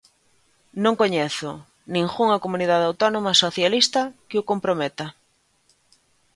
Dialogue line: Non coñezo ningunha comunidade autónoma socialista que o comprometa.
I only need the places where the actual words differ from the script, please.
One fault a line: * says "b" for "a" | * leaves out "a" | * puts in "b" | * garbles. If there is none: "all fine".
all fine